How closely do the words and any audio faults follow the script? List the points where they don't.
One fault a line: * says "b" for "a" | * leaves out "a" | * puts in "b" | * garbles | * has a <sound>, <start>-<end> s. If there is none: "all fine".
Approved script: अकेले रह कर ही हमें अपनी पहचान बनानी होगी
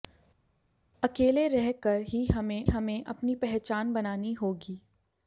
* puts in "हमें"